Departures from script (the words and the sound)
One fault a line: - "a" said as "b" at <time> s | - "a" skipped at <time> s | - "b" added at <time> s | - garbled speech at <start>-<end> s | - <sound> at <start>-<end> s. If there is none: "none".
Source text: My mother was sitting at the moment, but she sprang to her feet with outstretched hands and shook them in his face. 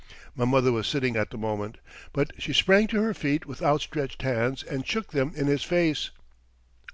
none